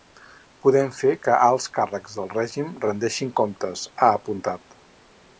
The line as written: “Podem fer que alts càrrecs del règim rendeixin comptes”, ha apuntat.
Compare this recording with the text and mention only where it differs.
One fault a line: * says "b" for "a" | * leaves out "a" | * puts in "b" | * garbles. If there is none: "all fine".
all fine